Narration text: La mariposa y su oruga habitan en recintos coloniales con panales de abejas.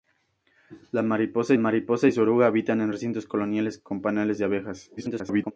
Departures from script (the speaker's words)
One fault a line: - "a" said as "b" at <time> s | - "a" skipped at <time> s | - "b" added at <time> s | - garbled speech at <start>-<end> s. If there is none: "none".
- "mariposa" added at 1.6 s
- garbled speech at 5.0-5.5 s